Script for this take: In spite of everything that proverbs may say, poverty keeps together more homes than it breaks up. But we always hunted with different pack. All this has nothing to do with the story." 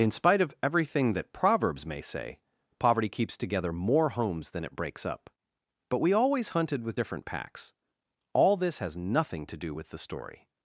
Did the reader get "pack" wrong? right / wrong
wrong